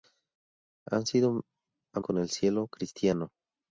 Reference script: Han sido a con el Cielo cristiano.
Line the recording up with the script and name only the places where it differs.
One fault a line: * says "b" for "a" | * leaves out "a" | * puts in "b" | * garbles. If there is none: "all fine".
all fine